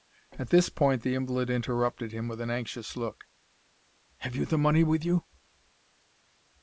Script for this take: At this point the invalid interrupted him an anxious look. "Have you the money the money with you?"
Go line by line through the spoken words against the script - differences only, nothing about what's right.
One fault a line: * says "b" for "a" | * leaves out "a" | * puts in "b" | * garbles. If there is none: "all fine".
* puts in "with"
* leaves out "the money"